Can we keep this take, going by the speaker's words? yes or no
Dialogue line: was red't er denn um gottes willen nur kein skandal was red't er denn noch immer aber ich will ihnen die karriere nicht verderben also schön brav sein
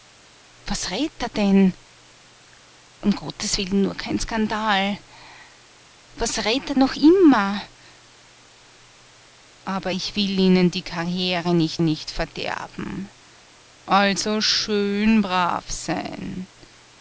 no